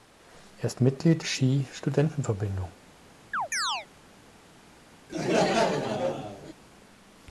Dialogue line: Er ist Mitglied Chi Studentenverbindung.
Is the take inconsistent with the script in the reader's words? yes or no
no